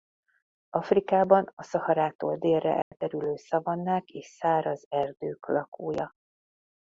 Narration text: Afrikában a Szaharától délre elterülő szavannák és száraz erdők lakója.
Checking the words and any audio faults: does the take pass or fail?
fail